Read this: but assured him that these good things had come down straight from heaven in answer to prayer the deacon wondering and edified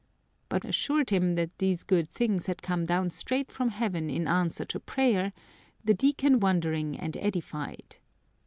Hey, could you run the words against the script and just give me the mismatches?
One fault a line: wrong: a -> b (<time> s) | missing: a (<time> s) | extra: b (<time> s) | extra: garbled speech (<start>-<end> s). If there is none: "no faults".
no faults